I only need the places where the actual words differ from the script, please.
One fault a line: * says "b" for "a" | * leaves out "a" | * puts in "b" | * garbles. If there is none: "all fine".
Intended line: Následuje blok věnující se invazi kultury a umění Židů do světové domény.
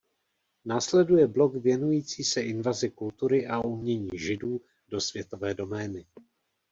all fine